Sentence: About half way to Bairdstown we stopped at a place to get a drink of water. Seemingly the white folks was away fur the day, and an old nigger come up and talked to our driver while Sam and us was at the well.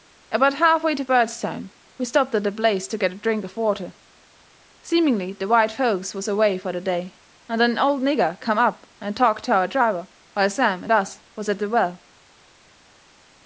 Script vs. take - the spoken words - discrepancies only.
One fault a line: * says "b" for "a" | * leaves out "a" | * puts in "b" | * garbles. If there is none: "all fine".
all fine